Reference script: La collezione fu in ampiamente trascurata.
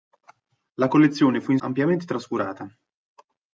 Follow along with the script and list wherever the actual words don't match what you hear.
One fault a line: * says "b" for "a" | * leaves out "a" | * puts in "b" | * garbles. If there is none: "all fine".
all fine